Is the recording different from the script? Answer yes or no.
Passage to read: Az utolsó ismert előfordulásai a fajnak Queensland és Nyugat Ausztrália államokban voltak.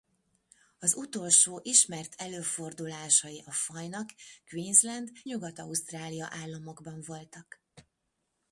yes